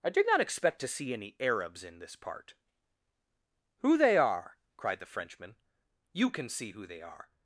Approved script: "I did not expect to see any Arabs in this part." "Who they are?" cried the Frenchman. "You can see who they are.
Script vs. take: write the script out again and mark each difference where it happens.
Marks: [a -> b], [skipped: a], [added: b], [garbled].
"I did not expect to see any Arabs in this part." "Who they are?" cried the Frenchman. "You can see who they are.